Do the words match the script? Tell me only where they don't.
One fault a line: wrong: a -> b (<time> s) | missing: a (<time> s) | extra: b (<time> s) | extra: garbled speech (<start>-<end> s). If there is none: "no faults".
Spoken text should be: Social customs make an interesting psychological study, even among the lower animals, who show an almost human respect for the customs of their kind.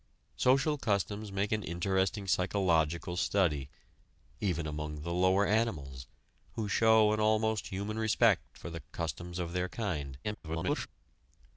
extra: garbled speech (10.2-10.9 s)